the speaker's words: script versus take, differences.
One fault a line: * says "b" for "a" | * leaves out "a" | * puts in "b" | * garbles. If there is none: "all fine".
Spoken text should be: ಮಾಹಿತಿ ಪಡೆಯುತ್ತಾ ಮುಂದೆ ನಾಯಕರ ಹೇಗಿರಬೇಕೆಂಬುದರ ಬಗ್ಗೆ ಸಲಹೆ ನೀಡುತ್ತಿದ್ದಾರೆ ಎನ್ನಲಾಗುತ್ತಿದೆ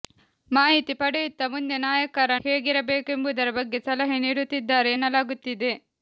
all fine